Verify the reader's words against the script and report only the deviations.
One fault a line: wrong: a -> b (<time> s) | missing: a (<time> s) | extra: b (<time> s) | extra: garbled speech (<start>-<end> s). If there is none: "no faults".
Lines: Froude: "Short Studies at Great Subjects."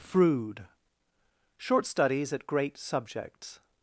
no faults